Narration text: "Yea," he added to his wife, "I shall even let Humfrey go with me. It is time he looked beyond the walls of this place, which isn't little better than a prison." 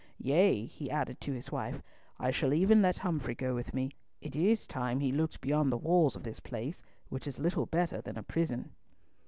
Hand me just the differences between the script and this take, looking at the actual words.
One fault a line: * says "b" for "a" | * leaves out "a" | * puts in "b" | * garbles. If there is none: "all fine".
* says "is" for "isn't"